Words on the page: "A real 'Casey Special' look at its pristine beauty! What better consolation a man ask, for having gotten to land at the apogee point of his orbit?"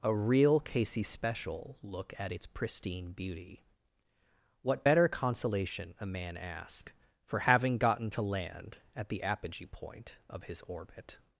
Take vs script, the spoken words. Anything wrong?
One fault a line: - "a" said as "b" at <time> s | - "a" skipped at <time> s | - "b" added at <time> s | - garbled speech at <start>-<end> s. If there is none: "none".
none